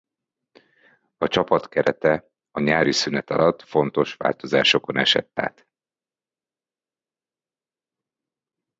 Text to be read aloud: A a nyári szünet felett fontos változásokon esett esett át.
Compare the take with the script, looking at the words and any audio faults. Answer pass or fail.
fail